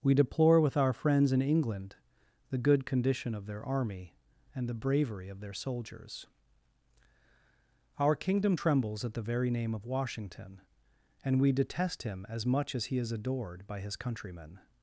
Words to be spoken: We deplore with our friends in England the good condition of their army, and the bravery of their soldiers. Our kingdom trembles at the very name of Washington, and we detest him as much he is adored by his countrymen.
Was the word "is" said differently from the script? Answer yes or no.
no